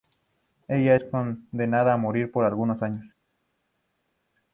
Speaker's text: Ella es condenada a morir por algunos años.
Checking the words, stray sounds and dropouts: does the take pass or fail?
pass